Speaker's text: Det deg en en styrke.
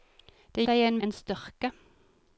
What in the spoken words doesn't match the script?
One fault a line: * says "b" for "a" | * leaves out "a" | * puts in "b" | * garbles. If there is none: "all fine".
all fine